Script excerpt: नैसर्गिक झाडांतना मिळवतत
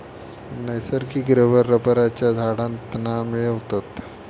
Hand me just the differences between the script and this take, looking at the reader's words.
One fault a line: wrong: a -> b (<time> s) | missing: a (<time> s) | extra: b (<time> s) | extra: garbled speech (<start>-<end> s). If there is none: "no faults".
extra: रबर रबरच्या (1.3 s)